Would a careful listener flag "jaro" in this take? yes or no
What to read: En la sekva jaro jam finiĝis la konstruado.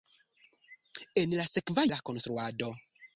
yes